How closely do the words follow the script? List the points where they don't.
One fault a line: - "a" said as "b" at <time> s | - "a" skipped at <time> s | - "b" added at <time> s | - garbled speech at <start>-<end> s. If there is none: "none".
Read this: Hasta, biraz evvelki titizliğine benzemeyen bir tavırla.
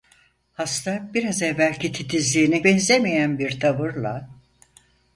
none